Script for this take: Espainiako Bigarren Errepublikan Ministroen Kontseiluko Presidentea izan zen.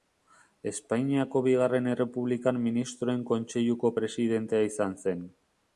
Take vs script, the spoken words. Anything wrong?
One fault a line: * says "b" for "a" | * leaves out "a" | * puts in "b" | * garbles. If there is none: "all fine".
all fine